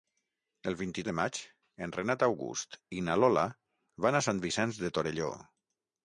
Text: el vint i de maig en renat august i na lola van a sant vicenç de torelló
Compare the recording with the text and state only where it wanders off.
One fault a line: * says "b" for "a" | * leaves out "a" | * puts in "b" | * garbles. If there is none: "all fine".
all fine